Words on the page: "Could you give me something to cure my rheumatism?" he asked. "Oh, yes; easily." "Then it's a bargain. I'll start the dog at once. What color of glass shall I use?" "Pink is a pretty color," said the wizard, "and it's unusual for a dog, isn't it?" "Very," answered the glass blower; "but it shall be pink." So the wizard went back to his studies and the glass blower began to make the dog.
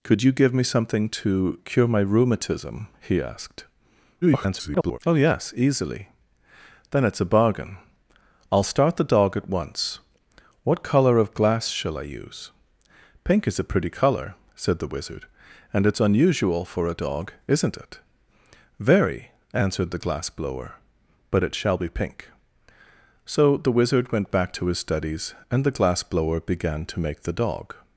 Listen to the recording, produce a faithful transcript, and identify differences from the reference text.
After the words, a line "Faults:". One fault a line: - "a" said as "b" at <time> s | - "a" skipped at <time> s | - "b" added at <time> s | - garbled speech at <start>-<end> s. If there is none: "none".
"Could you give me something to cure my rheumatism?" he asked. [garbled] "Oh, yes; easily." "Then it's a bargain. I'll start the dog at once. What color of glass shall I use?" "Pink is a pretty color," said the wizard, "and it's unusual for a dog, isn't it?" "Very," answered the glass blower; "but it shall be pink." So the wizard went back to his studies and the glass blower began to make the dog.
Faults:
- garbled speech at 4.2-5.0 s